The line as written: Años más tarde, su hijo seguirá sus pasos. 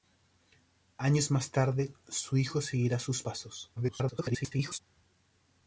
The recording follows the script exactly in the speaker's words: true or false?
false